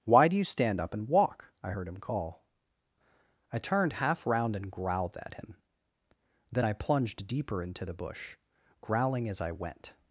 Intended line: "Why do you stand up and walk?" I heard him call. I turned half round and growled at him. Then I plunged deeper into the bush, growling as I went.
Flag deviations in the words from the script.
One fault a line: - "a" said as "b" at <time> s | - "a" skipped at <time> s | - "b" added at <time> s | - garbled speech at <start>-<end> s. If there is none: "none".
none